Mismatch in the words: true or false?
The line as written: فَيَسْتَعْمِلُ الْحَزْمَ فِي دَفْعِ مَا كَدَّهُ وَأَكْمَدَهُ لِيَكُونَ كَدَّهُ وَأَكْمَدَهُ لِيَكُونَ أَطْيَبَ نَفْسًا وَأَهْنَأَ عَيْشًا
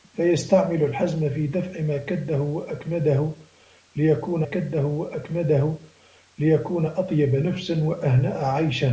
false